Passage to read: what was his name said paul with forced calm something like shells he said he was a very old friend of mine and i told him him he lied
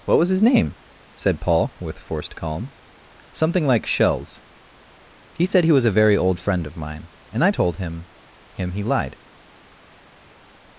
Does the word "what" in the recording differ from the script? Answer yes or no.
no